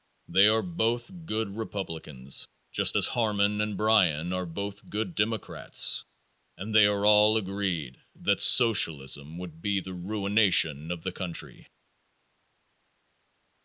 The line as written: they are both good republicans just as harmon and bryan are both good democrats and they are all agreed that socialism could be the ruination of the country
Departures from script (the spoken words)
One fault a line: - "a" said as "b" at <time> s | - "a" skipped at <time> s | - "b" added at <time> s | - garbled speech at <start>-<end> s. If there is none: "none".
- "could" said as "would" at 9.4 s